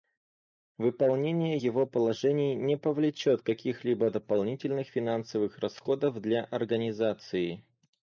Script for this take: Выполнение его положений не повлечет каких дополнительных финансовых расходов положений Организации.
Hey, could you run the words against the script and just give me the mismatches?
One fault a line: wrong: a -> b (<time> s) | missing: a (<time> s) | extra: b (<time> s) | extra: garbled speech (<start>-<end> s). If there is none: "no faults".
extra: либо (3.9 s)
wrong: положений -> для (6.2 s)